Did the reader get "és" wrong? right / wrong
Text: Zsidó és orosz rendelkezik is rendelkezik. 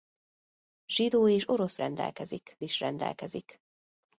right